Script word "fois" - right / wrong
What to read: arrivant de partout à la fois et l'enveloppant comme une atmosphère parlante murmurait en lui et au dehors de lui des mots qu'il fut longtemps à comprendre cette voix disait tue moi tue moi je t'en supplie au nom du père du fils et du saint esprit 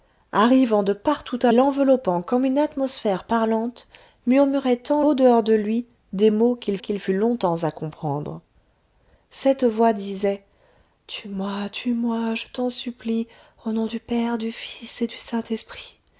wrong